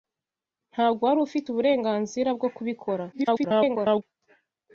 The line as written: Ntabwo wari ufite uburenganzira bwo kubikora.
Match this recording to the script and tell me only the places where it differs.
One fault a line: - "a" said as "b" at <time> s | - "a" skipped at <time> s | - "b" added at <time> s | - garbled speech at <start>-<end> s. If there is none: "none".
- garbled speech at 3.1-4.0 s